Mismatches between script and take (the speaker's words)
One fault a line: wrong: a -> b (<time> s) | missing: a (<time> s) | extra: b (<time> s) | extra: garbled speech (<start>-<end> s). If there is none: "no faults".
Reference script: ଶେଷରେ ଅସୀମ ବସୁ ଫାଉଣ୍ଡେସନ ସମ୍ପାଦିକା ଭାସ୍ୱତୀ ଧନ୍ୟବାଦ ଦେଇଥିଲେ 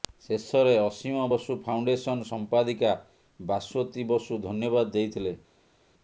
extra: ବସୁ (4.1 s)